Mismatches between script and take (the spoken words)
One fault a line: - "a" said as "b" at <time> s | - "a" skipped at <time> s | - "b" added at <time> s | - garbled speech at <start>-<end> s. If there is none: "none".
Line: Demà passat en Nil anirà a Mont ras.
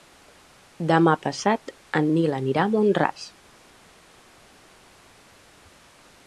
none